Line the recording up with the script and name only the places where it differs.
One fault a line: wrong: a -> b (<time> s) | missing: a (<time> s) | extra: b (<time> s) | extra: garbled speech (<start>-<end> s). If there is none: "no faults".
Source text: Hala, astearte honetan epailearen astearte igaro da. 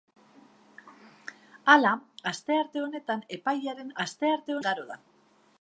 no faults